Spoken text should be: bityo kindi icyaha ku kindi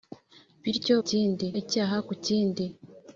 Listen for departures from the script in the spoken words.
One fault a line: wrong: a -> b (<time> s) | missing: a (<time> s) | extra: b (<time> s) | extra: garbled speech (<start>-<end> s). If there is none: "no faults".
no faults